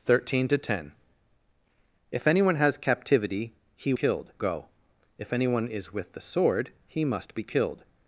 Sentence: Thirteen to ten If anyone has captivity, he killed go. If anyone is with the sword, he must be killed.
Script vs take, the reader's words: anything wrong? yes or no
no